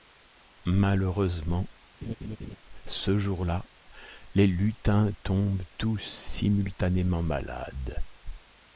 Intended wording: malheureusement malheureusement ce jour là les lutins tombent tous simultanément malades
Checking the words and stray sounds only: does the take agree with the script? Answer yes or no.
no